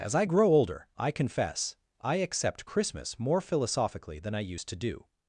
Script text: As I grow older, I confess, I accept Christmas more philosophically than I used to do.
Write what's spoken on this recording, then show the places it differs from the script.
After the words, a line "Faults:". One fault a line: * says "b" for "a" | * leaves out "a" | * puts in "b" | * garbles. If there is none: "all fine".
As I grow older, I confess, I accept Christmas more philosophically than I used to do.
Faults:
all fine